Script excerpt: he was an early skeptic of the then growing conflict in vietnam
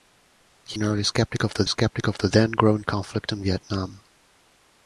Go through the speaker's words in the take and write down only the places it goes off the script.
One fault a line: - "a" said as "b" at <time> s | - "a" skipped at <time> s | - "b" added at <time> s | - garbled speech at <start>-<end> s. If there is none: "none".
- "was" skipped at 0.8 s
- "skeptic of the" added at 1.6 s